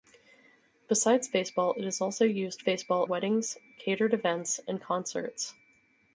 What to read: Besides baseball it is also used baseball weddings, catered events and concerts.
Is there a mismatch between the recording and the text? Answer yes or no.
no